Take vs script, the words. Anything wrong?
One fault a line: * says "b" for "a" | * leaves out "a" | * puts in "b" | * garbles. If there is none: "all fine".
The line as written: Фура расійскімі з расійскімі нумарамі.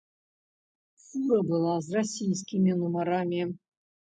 * says "была" for "расійскімі"